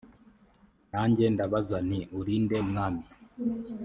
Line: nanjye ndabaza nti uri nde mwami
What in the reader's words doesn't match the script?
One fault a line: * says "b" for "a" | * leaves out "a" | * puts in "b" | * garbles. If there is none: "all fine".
all fine